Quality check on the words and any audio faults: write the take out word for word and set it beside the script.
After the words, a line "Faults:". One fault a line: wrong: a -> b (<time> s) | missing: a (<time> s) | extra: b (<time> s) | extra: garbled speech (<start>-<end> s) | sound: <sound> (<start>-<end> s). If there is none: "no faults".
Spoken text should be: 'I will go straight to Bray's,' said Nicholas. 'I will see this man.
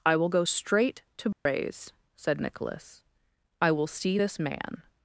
'I will go straight to Bray's,' said Nicholas. 'I will see this man.
Faults:
sound: dropout (1.3-1.5 s)